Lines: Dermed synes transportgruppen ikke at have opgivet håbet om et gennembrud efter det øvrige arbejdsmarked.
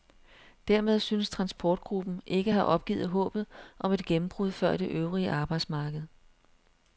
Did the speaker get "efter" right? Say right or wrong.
wrong